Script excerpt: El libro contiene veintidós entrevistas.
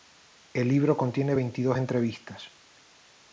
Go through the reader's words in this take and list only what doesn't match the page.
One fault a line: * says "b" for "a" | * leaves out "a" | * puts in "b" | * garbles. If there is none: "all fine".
all fine